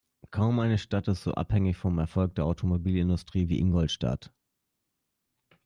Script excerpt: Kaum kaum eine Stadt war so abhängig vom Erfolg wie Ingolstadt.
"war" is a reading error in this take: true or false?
true